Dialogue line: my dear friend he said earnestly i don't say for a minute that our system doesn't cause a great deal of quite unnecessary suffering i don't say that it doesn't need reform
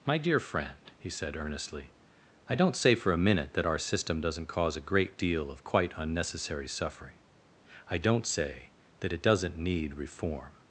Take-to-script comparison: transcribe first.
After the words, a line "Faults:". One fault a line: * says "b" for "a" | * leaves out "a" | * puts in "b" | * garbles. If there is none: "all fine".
my dear friend he said earnestly i don't say for a minute that our system doesn't cause a great deal of quite unnecessary suffering i don't say that it doesn't need reform
Faults:
all fine